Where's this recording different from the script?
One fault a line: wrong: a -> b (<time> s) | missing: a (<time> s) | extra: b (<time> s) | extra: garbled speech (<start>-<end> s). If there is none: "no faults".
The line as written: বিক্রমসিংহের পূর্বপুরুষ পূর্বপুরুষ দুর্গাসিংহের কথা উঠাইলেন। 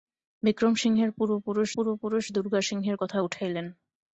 no faults